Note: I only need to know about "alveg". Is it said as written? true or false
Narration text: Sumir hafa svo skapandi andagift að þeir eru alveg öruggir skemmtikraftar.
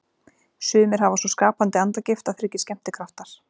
false